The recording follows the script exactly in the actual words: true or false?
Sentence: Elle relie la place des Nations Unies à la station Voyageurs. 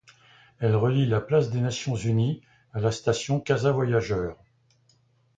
false